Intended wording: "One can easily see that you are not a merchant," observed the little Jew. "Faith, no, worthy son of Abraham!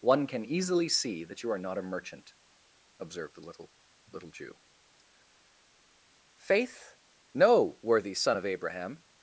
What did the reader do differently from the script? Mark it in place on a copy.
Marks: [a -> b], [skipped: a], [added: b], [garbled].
"One can easily see that you are not a merchant," observed the little [added: little] Jew. "Faith, no, worthy son of Abraham!